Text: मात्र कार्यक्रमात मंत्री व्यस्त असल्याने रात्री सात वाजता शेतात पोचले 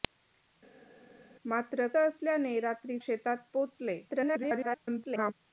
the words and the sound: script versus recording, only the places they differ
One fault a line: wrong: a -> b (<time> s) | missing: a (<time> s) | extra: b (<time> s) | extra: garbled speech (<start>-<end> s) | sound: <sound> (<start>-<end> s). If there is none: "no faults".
missing: कार्यक्रमात मंत्री व्यस्त (1.9 s)
missing: सात वाजता (3.0 s)
extra: garbled speech (4.1-5.3 s)